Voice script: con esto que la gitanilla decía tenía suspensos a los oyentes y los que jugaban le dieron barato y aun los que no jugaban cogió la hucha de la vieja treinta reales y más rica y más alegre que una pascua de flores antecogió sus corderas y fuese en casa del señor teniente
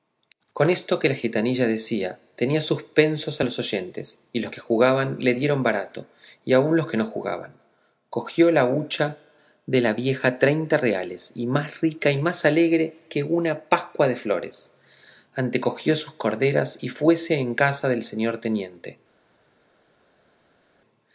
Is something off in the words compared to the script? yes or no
no